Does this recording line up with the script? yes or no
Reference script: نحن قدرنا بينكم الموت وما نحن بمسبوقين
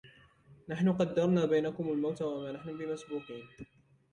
yes